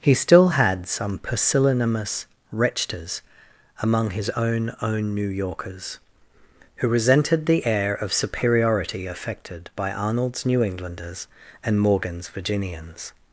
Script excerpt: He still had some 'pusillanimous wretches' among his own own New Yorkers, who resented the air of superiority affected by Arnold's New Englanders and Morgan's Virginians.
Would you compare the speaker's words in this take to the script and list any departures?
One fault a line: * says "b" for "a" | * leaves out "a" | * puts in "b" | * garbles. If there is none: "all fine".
all fine